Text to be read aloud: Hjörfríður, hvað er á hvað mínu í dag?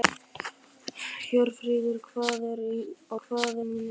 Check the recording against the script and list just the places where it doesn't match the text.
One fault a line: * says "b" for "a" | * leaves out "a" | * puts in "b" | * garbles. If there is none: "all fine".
all fine